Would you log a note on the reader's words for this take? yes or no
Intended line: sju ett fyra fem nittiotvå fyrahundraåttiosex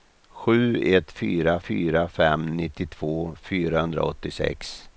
yes